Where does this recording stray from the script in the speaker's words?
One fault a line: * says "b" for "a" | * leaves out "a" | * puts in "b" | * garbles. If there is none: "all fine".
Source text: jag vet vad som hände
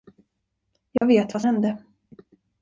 * leaves out "som"